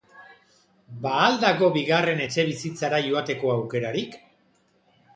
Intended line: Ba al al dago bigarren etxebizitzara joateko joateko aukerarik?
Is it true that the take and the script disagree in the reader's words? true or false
true